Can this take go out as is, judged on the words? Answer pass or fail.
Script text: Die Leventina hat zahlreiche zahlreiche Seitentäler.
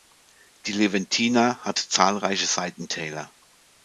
fail